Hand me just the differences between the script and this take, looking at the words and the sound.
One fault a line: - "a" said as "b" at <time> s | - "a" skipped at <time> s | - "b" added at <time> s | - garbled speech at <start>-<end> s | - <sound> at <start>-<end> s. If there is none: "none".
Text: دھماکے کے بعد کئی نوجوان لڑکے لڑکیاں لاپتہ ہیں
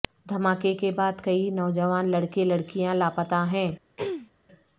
- throat clearing at 4.0-4.3 s